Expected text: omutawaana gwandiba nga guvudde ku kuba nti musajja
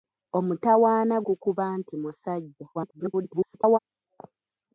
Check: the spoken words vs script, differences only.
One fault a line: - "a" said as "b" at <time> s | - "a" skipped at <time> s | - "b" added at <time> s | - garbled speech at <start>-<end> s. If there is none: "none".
- "gwandiba nga guvudde" skipped at 1.1 s
- garbled speech at 2.7-3.8 s